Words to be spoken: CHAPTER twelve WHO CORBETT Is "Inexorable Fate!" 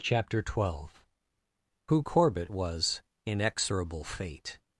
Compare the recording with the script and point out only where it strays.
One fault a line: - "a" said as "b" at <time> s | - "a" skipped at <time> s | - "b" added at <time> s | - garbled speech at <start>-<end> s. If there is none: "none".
- "Is" said as "WAS" at 2.5 s